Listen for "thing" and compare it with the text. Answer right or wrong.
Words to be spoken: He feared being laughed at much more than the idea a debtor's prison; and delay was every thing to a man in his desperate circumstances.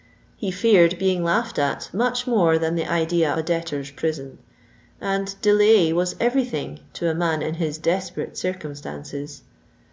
right